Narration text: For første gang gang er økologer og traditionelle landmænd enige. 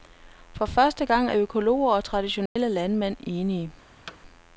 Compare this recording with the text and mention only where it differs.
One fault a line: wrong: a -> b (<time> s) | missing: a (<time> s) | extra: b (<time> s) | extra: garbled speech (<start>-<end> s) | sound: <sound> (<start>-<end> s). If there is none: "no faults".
missing: gang (1.3 s)
sound: dropout (2.5-2.6 s)
sound: thud (4.1-4.2 s)